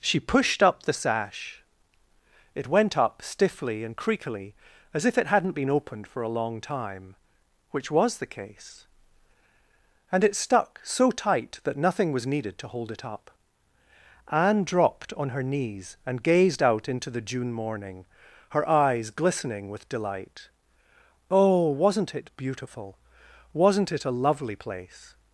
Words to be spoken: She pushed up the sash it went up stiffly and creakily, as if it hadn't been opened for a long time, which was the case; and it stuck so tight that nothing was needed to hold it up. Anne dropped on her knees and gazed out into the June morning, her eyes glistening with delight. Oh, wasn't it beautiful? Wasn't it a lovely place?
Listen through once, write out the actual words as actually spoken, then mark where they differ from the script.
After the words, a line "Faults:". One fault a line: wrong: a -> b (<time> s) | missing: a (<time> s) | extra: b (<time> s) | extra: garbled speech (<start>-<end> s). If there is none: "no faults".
She pushed up the sash it went up stiffly and creakily, as if it hadn't been opened for a long time, which was the case; and it stuck so tight that nothing was needed to hold it up. Anne dropped on her knees and gazed out into the June morning, her eyes glistening with delight. Oh, wasn't it beautiful? Wasn't it a lovely place?
Faults:
no faults